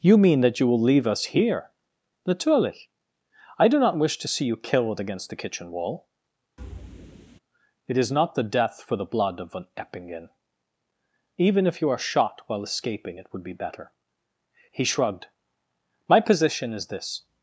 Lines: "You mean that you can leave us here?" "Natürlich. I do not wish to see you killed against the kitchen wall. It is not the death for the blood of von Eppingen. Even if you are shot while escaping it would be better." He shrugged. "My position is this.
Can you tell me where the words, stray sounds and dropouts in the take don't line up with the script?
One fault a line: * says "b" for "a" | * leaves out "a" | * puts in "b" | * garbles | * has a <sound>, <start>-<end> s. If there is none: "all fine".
* says "will" for "can"
* has a thud, 6.6-7.4 s